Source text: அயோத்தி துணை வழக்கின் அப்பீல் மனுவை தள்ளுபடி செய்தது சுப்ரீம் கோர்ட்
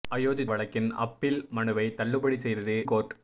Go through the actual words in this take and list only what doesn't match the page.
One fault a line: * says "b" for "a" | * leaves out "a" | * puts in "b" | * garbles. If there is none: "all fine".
* leaves out "துணை"
* leaves out "சுப்ரீம்"